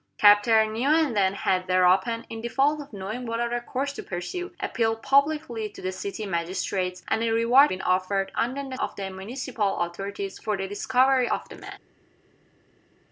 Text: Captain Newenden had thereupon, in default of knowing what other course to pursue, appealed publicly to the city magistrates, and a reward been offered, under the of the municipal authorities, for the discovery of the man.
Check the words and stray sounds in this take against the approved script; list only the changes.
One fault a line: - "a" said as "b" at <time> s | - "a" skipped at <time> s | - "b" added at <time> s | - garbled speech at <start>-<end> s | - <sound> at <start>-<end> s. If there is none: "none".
none